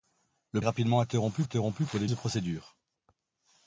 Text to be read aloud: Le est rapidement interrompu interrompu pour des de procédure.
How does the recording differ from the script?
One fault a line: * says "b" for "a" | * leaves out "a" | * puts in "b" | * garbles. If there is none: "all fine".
all fine